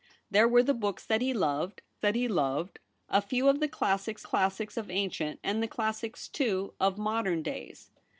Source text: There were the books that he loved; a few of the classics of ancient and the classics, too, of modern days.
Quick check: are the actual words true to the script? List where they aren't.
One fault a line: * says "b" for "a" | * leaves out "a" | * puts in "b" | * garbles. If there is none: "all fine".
* puts in "that he loved"
* puts in "classics"